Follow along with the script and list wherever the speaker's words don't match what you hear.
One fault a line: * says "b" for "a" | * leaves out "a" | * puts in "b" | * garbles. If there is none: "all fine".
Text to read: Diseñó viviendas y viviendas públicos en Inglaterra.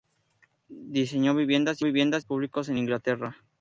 all fine